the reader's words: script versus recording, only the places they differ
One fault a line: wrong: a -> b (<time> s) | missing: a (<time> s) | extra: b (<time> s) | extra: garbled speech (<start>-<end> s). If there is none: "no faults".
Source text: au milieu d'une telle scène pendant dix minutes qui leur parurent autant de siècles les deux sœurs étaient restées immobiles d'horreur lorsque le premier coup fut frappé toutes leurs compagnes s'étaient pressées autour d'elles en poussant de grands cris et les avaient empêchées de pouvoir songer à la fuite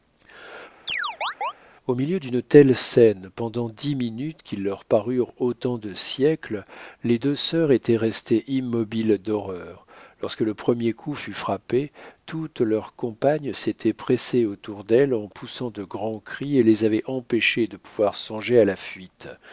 no faults